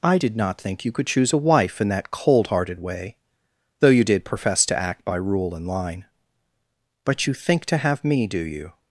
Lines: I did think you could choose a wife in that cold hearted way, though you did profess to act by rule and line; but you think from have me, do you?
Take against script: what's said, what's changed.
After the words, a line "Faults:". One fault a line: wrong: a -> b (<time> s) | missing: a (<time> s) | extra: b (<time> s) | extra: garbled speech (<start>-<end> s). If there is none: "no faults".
I did not think you could choose a wife in that cold hearted way, though you did profess to act by rule and line; but you think to have me, do you?
Faults:
extra: not (0.4 s)
wrong: from -> to (7.6 s)